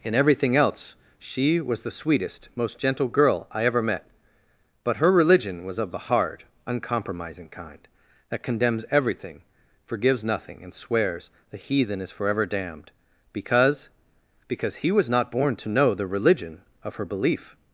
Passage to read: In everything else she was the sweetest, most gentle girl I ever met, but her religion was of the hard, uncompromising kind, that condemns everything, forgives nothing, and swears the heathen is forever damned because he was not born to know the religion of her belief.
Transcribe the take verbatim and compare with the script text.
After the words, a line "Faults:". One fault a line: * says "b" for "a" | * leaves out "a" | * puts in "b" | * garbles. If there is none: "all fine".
In everything else she was the sweetest, most gentle girl I ever met, but her religion was of the hard, uncompromising kind, that condemns everything, forgives nothing, and swears the heathen is forever damned because because he was not born to know the religion of her belief.
Faults:
* puts in "because"